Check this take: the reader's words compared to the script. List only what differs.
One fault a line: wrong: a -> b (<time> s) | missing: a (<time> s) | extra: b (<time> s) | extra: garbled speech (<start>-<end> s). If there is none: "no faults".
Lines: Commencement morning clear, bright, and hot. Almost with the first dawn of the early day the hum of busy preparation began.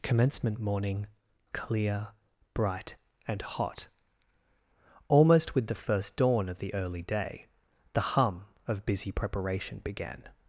no faults